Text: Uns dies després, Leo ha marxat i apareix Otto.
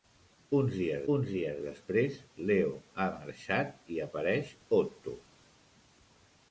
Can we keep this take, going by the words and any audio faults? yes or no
no